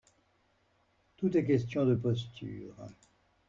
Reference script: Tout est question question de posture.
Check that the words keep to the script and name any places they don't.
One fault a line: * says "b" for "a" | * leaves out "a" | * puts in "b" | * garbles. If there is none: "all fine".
* leaves out "question"